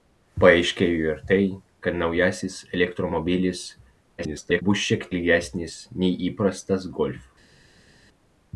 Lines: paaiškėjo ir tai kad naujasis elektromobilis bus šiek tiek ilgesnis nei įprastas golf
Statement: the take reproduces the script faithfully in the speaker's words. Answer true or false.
false